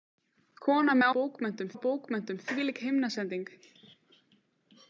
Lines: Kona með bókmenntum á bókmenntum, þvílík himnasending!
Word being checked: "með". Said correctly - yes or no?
yes